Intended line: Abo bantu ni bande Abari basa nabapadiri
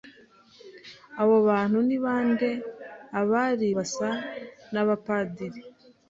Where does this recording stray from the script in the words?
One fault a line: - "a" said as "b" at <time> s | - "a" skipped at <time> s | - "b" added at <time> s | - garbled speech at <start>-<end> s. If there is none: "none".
none